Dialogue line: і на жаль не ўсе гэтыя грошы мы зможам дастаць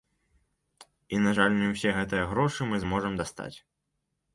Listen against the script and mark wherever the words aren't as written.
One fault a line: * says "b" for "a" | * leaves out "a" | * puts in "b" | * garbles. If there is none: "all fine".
all fine